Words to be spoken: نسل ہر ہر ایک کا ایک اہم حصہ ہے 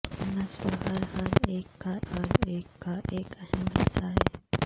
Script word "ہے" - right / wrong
right